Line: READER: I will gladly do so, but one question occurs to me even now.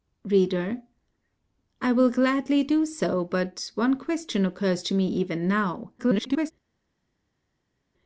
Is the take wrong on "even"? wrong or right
right